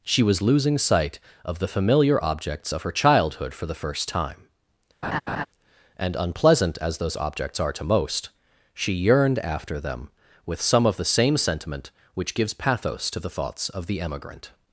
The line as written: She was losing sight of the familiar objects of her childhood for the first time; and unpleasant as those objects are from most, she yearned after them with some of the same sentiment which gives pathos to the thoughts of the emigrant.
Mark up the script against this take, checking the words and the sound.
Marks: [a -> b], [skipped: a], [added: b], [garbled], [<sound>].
She was losing sight of the familiar objects of her childhood for the first time; [laugh] and unpleasant as those objects are [from -> to] most, she yearned after them with some of the same sentiment which gives pathos to the thoughts of the emigrant.